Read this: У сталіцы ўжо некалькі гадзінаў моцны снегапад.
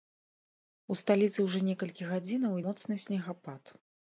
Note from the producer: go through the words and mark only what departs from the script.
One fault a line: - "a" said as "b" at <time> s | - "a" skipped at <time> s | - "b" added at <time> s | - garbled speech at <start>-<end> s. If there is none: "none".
none